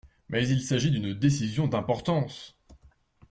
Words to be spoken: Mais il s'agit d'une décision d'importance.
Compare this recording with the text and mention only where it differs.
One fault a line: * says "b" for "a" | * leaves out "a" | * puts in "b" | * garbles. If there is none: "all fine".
all fine